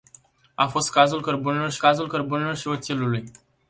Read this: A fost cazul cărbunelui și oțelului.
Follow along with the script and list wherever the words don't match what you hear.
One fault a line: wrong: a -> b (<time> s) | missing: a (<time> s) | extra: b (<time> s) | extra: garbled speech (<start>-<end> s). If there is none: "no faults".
extra: cazul cărbunelui și (1.8 s)